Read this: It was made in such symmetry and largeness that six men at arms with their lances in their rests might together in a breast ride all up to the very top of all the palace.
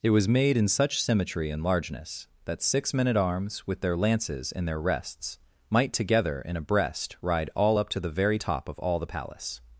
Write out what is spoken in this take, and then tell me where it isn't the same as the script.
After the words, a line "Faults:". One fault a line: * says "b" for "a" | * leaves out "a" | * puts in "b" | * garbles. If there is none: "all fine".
It was made in such symmetry and largeness that six men at arms with their lances in their rests might together in a breast ride all up to the very top of all the palace.
Faults:
all fine